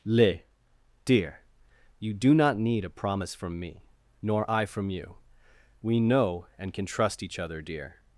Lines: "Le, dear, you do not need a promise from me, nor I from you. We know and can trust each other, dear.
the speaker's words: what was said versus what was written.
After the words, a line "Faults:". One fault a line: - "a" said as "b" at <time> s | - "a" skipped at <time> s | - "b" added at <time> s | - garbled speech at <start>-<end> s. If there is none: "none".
"Le, dear, you do not need a promise from me, nor I from you. We know and can trust each other, dear.
Faults:
none